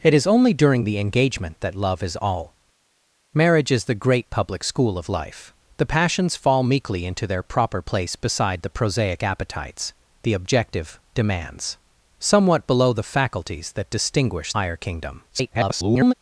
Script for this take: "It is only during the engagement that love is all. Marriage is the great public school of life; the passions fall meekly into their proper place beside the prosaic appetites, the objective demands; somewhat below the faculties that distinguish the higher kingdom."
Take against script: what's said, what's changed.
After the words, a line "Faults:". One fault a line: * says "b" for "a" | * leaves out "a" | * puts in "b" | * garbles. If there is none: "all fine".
"It is only during the engagement that love is all. Marriage is the great public school of life; the passions fall meekly into their proper place beside the prosaic appetites, the objective demands; somewhat below the faculties that distinguish higher kingdom." [garbled]
Faults:
* leaves out "the"
* garbles